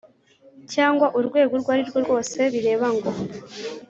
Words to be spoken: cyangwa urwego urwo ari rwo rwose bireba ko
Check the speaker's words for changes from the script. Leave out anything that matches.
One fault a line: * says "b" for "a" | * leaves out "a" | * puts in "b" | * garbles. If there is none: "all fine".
* says "ngo" for "ko"